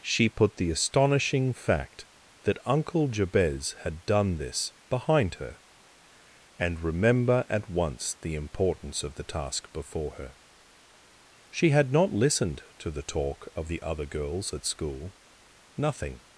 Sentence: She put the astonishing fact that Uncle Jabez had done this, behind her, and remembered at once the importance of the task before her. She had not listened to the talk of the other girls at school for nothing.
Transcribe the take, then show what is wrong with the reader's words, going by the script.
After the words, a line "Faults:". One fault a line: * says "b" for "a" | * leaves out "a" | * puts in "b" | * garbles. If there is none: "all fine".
She put the astonishing fact that Uncle Jabez had done this, behind her, and remember at once the importance of the task before her. She had not listened to the talk of the other girls at school nothing.
Faults:
* says "remember" for "remembered"
* leaves out "for"